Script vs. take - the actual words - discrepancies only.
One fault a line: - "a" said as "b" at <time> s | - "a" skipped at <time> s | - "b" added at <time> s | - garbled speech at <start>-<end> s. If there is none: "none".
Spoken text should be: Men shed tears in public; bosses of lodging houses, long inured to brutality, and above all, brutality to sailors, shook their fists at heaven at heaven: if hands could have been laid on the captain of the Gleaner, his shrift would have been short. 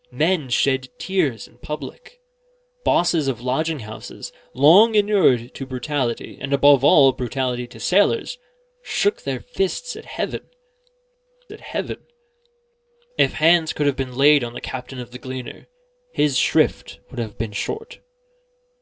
none